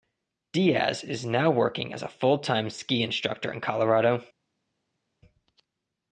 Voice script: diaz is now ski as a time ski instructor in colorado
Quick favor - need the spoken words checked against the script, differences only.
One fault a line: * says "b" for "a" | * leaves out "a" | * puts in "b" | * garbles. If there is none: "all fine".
* says "working" for "ski"
* puts in "full"